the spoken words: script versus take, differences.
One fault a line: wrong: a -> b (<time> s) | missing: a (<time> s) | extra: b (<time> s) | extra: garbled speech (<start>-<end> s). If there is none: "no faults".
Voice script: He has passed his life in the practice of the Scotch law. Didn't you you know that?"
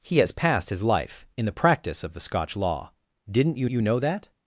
no faults